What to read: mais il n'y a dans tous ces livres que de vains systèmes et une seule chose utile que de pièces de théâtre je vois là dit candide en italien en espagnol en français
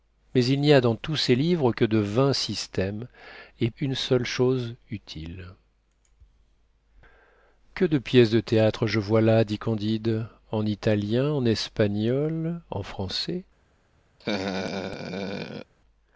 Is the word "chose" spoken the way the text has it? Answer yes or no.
yes